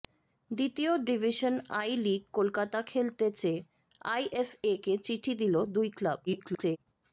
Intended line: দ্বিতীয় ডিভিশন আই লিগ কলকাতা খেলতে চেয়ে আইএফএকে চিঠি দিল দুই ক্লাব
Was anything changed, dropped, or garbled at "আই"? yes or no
no